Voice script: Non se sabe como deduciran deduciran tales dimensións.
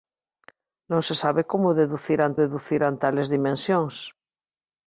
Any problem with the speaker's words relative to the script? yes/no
no